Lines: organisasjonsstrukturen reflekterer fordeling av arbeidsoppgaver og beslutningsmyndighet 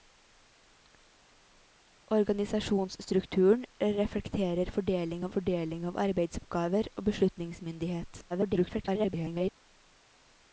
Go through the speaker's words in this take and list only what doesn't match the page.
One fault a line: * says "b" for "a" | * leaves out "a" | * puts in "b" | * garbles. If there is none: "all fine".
* puts in "fordeling av"
* garbles